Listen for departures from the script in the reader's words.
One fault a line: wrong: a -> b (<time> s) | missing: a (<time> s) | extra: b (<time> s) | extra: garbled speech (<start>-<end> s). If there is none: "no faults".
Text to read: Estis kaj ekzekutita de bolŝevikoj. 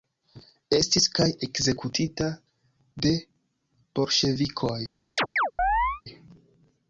no faults